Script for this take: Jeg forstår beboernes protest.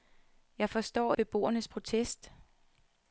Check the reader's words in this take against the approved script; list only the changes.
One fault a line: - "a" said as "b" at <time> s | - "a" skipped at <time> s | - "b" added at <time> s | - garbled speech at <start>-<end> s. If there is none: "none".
none